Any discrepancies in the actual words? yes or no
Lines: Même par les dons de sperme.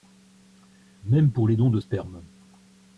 yes